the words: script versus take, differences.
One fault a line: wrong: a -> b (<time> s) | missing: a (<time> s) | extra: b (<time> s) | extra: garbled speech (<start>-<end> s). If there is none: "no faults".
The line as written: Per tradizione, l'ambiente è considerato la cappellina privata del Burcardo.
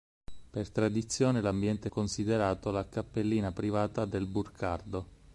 no faults